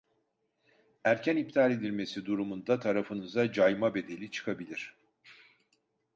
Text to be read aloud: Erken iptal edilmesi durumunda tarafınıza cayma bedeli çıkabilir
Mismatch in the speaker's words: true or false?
false